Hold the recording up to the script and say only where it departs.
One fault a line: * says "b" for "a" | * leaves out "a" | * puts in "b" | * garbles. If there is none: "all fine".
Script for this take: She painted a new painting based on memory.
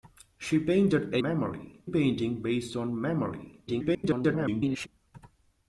* says "memory" for "new"
* garbles